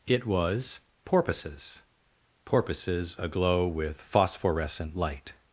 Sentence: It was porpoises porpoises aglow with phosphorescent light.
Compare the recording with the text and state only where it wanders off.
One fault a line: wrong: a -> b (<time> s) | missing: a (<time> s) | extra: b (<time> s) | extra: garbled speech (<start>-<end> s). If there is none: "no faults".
no faults